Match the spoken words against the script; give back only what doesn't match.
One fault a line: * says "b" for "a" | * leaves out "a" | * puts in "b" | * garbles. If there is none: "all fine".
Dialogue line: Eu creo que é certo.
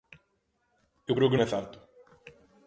all fine